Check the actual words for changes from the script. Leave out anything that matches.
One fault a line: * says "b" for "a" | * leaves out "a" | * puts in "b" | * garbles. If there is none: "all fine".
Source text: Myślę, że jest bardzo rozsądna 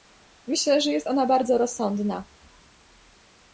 * puts in "ona"